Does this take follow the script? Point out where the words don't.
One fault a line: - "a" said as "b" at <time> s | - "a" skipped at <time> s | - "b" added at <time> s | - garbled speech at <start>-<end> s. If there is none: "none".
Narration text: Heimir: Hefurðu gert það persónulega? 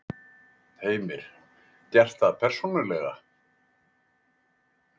- "Hefurðu" skipped at 1.2 s